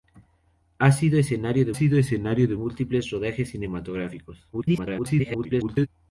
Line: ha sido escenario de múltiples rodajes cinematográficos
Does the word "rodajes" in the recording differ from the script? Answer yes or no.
no